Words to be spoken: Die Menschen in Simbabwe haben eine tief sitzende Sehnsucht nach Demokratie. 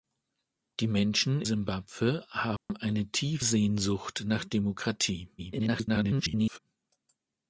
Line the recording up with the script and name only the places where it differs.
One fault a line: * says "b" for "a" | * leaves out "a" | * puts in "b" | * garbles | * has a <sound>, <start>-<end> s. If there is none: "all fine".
* leaves out "in"
* has a dropout, 2.6-2.7 s
* leaves out "sitzende"
* garbles